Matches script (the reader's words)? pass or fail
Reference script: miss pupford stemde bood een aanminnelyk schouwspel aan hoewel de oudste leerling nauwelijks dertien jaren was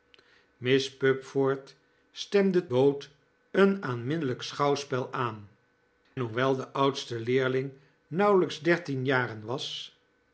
pass